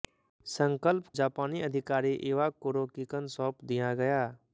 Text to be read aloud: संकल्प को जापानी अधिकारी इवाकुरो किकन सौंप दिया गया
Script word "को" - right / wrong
wrong